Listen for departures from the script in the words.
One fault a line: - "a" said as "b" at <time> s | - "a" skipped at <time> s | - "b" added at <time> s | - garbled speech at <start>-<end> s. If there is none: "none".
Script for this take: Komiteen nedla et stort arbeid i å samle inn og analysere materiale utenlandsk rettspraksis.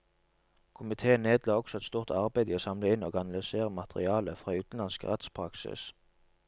- "også" added at 1.5 s
- "fra" added at 4.4 s